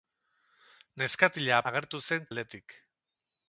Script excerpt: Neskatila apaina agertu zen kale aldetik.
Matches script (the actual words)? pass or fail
fail